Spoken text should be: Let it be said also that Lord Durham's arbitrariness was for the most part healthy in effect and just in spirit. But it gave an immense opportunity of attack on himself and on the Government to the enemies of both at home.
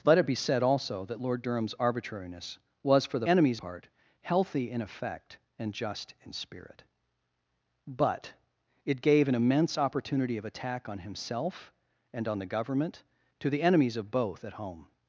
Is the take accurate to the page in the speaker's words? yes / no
no